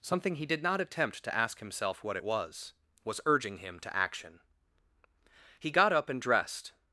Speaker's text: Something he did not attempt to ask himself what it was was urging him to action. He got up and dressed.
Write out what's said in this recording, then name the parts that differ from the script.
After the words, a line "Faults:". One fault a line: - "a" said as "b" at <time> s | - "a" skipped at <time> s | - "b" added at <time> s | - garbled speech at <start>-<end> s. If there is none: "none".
Something he did not attempt to ask himself what it was was urging him to action. He got up and dressed.
Faults:
none